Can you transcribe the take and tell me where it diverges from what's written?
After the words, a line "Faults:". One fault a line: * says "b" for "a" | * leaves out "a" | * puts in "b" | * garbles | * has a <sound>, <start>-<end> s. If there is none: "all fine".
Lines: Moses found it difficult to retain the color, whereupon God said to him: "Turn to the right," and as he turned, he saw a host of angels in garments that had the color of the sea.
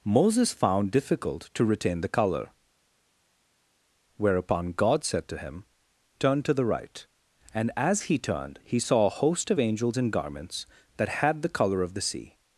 Moses found difficult to retain the color, whereupon God said to him: "Turn to the right," and as he turned, he saw a host of angels in garments that had the color of the sea.
Faults:
* leaves out "it"